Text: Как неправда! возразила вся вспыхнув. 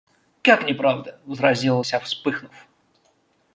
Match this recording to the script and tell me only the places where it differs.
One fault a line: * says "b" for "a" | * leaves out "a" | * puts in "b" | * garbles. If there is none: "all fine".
all fine